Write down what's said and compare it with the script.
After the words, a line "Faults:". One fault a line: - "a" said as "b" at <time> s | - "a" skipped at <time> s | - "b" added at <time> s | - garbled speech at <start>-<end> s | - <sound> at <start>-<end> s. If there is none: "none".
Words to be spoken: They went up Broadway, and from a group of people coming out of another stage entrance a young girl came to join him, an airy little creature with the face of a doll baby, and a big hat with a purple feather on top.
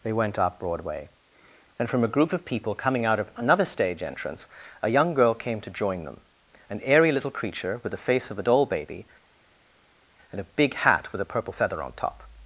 They went up Broadway, and from a group of people coming out of another stage entrance a young girl came to join them, an airy little creature with the face of a doll baby, and a big hat with a purple feather on top.
Faults:
- "him" said as "them" at 6.0 s